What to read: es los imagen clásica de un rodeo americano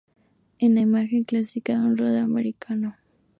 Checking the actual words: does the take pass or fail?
fail